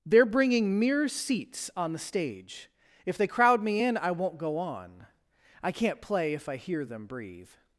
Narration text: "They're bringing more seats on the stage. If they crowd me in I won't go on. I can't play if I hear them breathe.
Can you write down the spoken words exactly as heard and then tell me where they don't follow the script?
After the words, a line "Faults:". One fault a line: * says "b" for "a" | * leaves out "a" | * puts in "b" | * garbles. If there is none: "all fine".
"They're bringing mere seats on the stage. If they crowd me in I won't go on. I can't play if I hear them breathe.
Faults:
* says "mere" for "more"